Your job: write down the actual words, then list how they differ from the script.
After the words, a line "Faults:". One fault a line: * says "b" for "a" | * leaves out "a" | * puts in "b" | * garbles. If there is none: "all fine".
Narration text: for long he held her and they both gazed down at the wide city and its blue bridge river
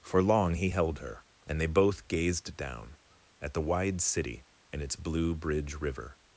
for long he held her and they both gazed down at the wide city and its blue bridge river
Faults:
all fine